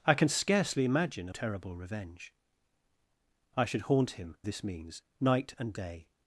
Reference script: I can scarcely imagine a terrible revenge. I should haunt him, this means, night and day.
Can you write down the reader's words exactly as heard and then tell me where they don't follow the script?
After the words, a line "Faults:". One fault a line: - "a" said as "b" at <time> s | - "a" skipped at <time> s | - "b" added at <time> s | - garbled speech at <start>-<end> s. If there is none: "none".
I can scarcely imagine a terrible revenge. I should haunt him, this means, night and day.
Faults:
none